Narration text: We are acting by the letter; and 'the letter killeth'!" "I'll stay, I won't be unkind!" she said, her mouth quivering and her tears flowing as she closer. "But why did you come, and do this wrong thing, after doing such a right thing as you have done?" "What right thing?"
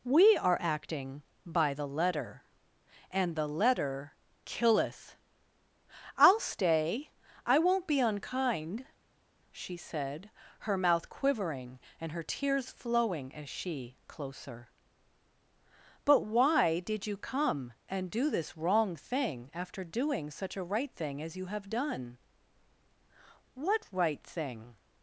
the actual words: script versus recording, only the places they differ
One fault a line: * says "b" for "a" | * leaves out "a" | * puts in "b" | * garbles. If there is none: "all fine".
all fine